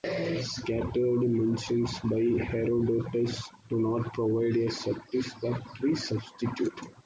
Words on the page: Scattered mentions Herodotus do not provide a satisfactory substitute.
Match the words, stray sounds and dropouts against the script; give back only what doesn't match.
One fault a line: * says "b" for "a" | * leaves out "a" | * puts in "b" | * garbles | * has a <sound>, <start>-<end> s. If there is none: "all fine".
* puts in "by"